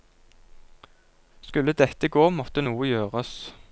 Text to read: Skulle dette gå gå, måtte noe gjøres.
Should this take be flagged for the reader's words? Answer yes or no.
yes